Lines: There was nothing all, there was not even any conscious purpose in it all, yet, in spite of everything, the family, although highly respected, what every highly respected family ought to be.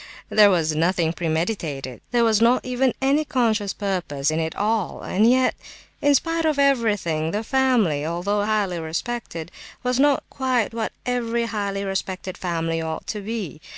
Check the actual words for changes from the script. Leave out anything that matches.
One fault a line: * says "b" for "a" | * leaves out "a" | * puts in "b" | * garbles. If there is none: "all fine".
* says "premeditated" for "all"
* puts in "and"
* puts in "was not quite"